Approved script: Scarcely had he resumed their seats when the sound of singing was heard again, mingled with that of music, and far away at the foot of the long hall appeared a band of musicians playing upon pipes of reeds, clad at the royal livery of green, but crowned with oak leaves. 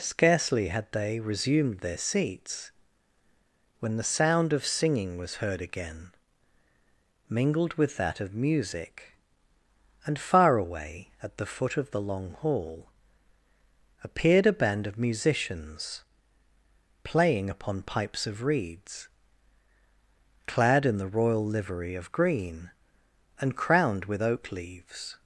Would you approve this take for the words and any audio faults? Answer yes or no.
no